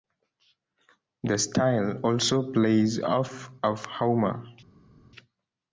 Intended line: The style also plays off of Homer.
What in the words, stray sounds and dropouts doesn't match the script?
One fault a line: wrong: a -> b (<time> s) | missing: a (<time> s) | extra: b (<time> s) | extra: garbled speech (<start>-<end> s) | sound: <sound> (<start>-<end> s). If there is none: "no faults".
no faults